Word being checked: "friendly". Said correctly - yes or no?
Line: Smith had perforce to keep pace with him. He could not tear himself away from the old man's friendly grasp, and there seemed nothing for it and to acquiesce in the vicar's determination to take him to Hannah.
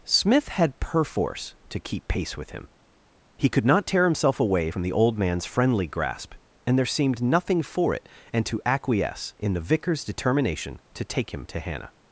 yes